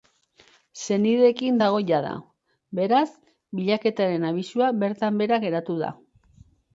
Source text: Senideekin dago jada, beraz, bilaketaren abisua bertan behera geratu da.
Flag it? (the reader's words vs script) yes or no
no